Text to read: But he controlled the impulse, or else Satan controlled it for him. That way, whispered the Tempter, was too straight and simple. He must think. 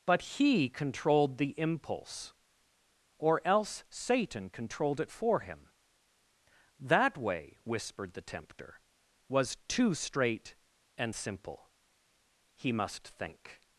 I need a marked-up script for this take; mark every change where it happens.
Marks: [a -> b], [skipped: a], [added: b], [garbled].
But he controlled the impulse, or else Satan controlled it for him. That way, whispered the Tempter, was too straight and simple. He must think.